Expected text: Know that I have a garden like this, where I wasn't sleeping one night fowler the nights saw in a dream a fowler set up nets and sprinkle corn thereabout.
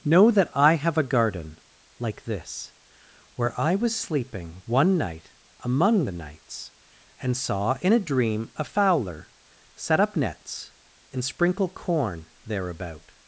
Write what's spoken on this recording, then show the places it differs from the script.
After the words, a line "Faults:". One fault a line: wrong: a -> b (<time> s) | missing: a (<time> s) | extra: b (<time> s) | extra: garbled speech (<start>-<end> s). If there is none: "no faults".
Know that I have a garden like this, where I was sleeping one night among the nights and saw in a dream a fowler set up nets and sprinkle corn thereabout.
Faults:
wrong: wasn't -> was (3.8 s)
wrong: fowler -> among (5.6 s)
extra: and (7.2 s)